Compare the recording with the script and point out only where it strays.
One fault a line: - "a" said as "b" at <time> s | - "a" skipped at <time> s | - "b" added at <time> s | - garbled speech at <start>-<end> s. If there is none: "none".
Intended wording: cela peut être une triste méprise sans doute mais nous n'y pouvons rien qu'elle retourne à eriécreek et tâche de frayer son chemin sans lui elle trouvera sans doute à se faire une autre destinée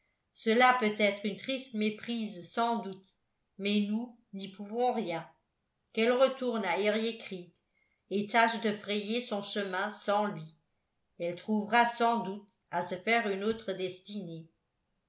none